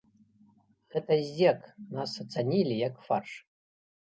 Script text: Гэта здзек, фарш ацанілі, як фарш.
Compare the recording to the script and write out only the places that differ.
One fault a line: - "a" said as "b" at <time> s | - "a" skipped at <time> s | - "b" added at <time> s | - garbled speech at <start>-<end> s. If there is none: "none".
- "фарш" said as "нас" at 2.0 s